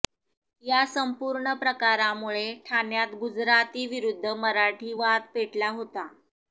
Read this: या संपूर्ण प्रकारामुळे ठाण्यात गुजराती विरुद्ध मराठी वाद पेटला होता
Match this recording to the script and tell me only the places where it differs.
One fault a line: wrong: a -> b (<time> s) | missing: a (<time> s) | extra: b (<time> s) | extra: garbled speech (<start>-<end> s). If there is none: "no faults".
no faults